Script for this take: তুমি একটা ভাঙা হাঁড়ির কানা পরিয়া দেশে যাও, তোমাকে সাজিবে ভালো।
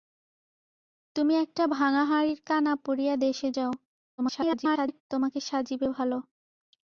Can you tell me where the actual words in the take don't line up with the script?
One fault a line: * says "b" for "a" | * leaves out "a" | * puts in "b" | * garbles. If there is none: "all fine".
* garbles